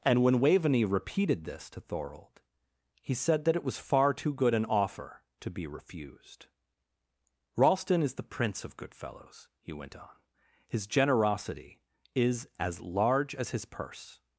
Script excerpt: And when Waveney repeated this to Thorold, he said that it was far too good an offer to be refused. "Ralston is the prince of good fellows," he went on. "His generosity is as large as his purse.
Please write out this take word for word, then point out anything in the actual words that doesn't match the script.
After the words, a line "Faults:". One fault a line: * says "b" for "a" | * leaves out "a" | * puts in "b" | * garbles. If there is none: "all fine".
And when Waveney repeated this to Thorold, he said that it was far too good an offer to be refused. "Ralston is the prince of good fellows," he went on. "His generosity is as large as his purse.
Faults:
all fine